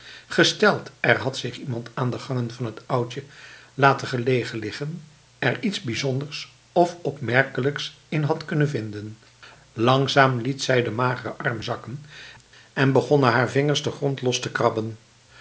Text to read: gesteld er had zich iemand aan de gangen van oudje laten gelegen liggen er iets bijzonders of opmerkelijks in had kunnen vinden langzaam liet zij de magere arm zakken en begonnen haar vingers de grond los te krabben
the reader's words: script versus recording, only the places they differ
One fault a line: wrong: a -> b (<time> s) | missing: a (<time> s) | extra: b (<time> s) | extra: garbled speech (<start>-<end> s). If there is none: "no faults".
extra: het (2.6 s)